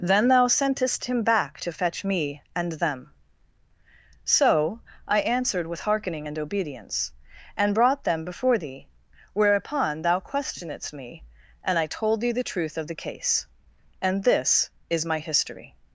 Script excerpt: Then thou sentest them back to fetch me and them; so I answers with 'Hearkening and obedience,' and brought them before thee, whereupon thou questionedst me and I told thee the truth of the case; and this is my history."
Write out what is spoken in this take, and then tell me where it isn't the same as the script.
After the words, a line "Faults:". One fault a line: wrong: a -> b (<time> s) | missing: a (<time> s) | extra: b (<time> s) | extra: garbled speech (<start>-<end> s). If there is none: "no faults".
Then thou sentest him back to fetch me and them; so I answered with 'Hearkening and obedience,' and brought them before thee, whereupon thou questionedst me and I told thee the truth of the case; and this is my history."
Faults:
wrong: them -> him (1.1 s)
wrong: answers -> answered (5.2 s)